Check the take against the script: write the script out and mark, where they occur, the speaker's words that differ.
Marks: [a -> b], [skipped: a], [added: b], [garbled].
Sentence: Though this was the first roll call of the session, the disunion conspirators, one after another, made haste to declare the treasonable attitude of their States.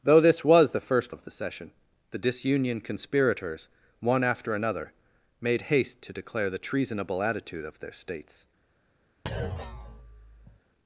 Though this was the first [skipped: roll call] of the session, the disunion conspirators, one after another, made haste to declare the treasonable attitude of their States.